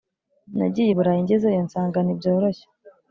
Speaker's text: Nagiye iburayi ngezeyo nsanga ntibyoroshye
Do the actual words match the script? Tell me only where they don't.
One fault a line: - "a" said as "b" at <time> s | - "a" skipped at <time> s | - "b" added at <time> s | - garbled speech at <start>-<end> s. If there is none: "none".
none